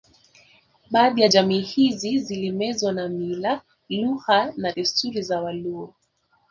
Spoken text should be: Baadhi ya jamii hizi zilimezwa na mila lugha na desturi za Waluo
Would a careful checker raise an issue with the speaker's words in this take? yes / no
no